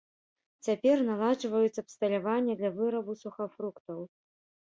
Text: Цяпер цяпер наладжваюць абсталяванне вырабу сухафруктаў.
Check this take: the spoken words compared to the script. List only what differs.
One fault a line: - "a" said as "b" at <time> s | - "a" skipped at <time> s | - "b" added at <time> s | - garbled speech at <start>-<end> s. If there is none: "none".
- "цяпер" skipped at 1.0 s
- "для" added at 2.6 s